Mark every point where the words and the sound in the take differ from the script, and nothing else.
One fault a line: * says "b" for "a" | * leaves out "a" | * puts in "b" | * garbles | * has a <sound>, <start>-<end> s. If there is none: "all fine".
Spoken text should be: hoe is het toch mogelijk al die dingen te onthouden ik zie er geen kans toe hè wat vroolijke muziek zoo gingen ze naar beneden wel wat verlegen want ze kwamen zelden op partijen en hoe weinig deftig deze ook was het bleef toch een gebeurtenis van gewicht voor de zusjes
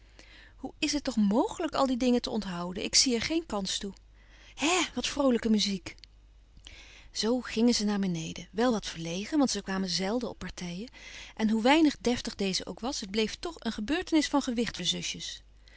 * leaves out "voor"